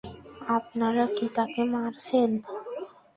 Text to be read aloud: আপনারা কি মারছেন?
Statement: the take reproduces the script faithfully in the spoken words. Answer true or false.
false